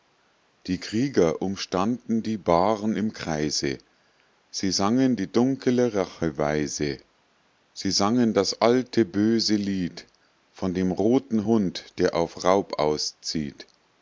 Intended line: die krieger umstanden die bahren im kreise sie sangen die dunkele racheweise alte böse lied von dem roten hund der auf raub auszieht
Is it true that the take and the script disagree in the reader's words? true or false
true